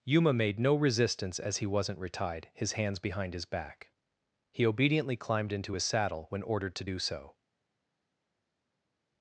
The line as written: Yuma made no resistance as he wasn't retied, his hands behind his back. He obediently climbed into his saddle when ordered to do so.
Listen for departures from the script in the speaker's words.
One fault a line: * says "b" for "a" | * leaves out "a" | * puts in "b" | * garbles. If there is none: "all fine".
all fine